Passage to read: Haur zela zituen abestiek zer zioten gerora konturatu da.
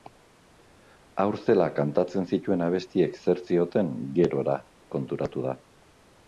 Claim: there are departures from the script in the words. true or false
true